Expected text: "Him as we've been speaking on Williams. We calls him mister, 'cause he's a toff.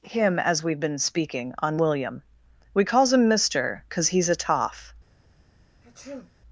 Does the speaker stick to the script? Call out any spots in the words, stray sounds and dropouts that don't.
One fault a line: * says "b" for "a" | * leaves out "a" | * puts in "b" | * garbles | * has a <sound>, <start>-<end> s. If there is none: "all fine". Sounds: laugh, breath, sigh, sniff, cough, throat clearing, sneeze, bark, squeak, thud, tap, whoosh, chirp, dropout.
* says "William" for "Williams"
* has a sneeze, 5.8-6.4 s